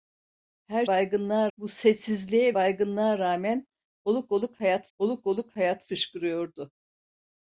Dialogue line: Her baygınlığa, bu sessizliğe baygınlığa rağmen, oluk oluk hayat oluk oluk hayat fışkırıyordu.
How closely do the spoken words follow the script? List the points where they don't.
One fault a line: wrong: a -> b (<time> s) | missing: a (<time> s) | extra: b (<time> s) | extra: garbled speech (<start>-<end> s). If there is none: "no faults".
no faults